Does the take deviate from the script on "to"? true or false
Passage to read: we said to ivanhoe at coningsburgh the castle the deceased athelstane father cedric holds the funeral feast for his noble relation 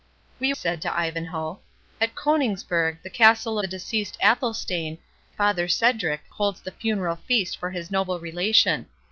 false